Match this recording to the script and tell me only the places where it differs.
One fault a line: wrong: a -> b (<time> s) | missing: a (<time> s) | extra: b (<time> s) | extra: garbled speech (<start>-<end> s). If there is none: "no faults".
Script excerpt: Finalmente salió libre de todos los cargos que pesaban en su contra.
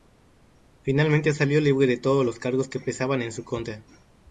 no faults